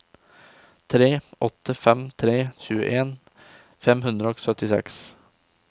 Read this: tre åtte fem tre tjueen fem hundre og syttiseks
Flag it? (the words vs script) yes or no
no